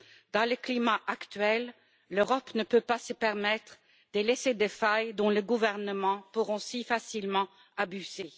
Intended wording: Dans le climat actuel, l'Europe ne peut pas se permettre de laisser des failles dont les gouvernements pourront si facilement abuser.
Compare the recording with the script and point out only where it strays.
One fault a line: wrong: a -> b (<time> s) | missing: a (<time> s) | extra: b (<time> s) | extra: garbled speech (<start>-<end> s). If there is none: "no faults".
no faults